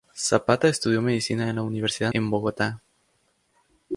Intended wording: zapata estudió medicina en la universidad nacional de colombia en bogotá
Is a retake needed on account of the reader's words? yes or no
yes